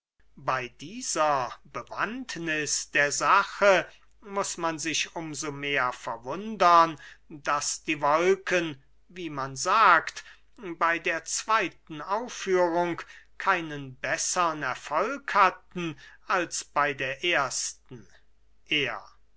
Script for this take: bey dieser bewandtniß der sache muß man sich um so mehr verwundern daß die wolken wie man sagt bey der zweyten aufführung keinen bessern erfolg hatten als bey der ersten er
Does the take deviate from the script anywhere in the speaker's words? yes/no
no